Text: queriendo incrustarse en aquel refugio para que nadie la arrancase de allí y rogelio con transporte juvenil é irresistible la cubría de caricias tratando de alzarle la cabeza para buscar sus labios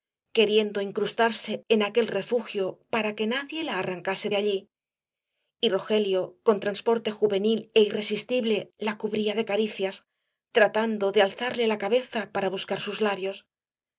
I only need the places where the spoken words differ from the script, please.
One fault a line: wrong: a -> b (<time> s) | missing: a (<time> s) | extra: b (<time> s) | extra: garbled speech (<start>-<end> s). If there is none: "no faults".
no faults